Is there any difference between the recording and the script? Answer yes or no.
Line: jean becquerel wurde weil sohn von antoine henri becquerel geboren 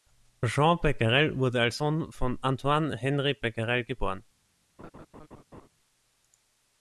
yes